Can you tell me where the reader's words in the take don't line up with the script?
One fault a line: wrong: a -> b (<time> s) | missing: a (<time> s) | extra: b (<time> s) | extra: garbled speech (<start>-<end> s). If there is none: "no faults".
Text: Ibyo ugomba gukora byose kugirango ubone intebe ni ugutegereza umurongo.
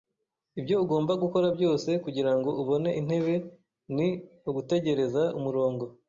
no faults